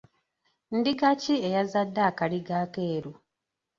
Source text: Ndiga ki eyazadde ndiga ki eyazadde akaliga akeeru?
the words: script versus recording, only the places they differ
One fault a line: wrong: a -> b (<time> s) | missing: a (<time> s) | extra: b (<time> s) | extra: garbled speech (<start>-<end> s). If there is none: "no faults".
missing: ndiga ki eyazadde (2.0 s)